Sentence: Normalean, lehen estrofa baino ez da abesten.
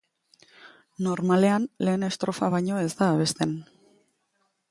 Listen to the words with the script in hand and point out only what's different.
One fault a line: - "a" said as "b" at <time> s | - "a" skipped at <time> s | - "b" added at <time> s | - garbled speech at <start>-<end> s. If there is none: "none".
none